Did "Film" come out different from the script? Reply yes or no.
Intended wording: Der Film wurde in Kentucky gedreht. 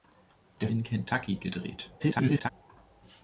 yes